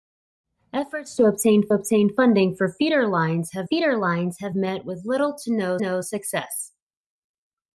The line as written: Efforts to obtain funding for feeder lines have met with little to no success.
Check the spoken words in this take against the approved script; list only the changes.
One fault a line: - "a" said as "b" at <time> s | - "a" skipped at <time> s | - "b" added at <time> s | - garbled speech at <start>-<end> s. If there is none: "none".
- "obtain" added at 1.7 s
- "feeder lines have" added at 3.6 s
- "no" added at 5.8 s